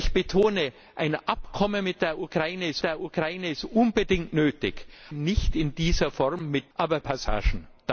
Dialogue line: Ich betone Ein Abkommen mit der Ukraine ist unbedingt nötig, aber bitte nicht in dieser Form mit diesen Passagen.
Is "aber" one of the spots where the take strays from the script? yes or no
yes